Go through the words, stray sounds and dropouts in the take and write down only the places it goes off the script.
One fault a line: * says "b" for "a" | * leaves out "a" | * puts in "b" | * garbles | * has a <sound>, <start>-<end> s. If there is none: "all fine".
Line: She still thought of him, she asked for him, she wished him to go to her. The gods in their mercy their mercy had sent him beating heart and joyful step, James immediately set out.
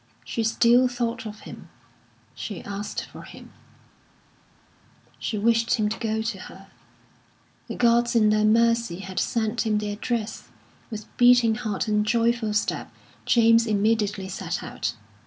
* leaves out "their mercy"
* puts in "the address with"